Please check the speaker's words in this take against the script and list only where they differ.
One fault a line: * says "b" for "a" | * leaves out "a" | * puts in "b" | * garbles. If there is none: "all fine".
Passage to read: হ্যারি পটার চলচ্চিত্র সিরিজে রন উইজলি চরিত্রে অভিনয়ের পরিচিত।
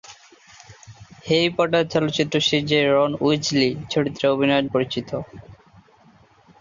all fine